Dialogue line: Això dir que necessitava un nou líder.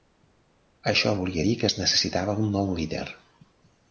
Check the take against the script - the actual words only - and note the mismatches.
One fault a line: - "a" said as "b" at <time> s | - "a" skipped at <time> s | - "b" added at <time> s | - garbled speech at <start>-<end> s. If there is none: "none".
- "volia" added at 1.2 s
- "es" added at 1.7 s